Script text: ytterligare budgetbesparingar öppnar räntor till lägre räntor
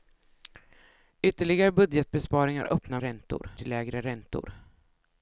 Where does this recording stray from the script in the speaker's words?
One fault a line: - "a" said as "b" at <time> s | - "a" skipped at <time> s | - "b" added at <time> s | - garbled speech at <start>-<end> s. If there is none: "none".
none